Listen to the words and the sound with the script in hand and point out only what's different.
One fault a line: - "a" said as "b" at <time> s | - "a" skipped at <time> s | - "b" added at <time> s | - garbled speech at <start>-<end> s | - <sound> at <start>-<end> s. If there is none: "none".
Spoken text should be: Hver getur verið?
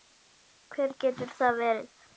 - "það" added at 1.4 s